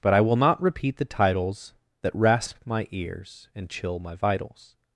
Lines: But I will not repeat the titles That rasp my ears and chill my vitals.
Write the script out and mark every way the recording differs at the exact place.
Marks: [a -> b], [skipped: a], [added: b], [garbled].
But I will not repeat the titles That rasp my ears and chill my vitals.